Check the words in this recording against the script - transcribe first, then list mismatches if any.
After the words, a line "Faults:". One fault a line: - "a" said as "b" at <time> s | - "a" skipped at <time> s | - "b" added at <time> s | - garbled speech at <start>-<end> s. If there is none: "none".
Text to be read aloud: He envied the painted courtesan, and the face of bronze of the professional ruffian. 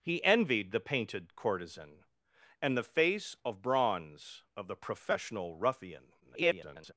He envied the painted courtesan, and the face of bronze of the professional ruffian. [garbled]
Faults:
- garbled speech at 6.2-6.9 s